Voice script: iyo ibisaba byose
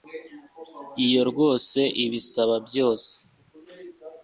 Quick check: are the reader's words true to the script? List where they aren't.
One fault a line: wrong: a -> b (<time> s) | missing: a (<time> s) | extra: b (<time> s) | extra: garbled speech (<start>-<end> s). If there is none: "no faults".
extra: rwose (1.3 s)